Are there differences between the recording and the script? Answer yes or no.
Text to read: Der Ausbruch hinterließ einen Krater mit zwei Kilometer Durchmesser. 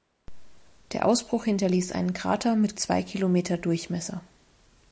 no